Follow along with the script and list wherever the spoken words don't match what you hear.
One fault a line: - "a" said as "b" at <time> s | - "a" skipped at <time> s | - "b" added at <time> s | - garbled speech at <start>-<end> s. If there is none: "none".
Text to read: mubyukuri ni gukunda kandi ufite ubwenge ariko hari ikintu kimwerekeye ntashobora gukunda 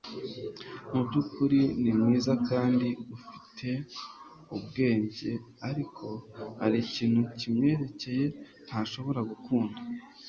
- "gukunda" said as "mwiza" at 2.0 s